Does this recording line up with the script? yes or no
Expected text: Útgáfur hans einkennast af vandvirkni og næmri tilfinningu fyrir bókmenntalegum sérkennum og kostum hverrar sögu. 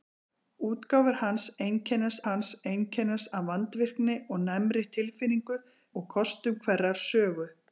no